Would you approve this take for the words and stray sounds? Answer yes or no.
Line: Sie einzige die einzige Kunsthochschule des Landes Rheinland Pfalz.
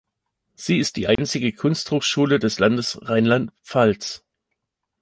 no